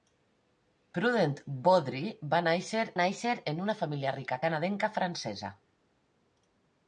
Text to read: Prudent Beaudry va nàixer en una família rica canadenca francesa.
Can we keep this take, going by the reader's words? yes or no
no